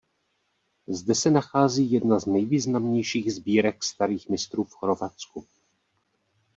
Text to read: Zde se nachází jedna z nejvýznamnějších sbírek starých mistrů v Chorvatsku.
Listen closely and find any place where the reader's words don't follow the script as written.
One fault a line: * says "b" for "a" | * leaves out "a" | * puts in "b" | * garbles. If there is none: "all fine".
all fine